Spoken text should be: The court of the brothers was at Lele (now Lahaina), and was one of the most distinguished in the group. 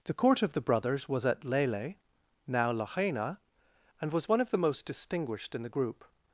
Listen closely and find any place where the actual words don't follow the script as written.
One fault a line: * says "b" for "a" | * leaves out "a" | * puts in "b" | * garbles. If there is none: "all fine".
all fine